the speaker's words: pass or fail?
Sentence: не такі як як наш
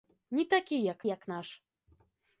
pass